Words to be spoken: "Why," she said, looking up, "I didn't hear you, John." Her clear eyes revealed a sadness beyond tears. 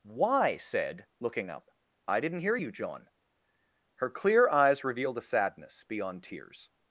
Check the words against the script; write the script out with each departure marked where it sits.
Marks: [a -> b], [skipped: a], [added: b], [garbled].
"Why," [skipped: she] said, looking up, "I didn't hear you, John." Her clear eyes revealed a sadness beyond tears.